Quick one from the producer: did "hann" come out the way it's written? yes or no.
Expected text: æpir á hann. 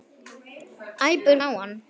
yes